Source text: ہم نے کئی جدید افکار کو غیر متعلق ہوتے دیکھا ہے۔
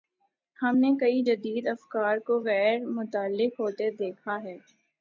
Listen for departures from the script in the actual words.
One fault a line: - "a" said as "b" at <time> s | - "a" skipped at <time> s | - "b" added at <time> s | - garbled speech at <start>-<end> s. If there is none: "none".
none